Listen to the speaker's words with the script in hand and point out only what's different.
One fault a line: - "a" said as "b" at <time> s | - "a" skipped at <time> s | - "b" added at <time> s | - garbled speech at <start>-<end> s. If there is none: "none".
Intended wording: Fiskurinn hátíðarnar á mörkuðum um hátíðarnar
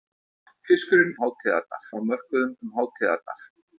none